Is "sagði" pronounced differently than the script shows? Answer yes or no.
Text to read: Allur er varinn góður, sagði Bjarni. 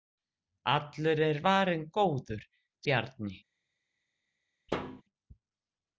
yes